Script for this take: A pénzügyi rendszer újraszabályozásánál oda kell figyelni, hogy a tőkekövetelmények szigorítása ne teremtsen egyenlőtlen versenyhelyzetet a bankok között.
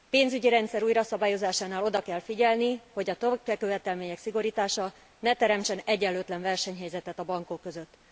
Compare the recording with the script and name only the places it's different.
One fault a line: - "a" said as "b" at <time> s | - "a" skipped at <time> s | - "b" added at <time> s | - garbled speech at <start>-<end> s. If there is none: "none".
none